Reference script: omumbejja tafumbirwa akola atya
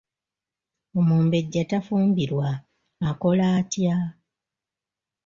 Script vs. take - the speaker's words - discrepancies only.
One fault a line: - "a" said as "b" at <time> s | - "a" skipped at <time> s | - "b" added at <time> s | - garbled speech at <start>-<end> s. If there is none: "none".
none